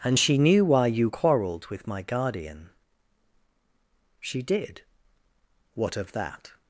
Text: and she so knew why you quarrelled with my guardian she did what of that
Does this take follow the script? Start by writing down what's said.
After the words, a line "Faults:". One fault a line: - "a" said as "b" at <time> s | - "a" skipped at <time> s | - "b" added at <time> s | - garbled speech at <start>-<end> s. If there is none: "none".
and she knew why you quarrelled with my guardian she did what of that
Faults:
- "so" skipped at 0.4 s